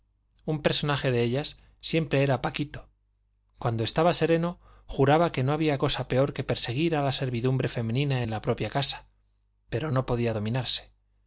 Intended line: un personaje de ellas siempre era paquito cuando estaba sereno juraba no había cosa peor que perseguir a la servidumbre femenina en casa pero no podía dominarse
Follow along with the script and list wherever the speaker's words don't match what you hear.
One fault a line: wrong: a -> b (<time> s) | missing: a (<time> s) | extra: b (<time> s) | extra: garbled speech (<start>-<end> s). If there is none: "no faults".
extra: que (5.3 s)
extra: la propia (8.3 s)